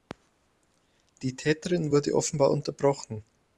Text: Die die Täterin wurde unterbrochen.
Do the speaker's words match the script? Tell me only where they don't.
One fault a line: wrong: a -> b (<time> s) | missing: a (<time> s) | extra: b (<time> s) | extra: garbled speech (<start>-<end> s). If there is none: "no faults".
missing: die (1.4 s)
extra: offenbar (2.1 s)